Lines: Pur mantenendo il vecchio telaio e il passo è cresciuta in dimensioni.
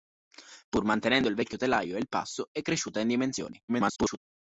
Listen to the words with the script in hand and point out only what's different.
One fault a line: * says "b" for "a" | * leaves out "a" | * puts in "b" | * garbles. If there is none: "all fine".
* garbles